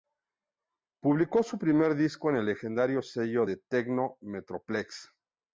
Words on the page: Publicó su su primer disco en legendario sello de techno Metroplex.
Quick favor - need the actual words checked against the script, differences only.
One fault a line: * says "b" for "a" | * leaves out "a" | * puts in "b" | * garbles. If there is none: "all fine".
* leaves out "su"
* puts in "el"